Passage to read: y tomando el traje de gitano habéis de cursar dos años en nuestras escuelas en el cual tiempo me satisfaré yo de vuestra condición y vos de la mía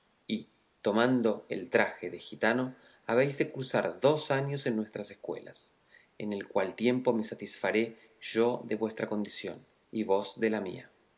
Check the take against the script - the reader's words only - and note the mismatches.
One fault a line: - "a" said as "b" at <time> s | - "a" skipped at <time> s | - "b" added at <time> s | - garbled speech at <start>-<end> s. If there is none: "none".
none